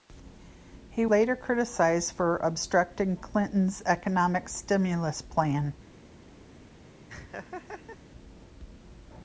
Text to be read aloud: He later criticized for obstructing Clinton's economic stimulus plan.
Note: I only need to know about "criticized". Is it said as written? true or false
true